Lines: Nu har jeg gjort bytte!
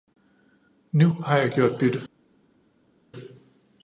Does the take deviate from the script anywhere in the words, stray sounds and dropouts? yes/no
no